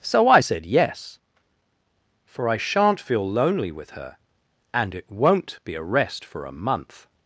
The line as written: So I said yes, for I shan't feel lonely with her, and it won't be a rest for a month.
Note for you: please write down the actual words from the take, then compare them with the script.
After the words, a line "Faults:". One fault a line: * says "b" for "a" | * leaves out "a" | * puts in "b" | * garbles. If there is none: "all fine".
So I said yes, for I shan't feel lonely with her, and it won't be a rest for a month.
Faults:
all fine